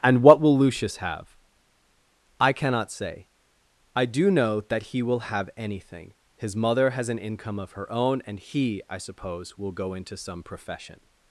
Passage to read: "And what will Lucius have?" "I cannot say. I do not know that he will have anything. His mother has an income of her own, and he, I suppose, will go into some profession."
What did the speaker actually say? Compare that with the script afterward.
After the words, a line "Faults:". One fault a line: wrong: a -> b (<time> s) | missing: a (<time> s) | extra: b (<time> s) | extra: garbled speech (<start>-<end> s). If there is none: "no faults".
"And what will Lucius have?" "I cannot say. I do know that he will have anything. His mother has an income of her own, and he, I suppose, will go into some profession."
Faults:
missing: not (4.3 s)